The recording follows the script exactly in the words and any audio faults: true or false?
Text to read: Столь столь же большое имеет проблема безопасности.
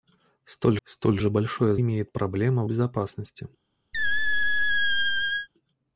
false